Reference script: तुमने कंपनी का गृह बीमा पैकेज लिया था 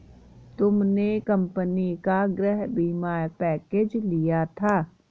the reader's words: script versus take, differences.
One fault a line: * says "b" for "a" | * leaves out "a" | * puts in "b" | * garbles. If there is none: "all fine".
all fine